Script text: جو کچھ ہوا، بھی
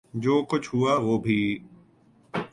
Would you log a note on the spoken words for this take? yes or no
yes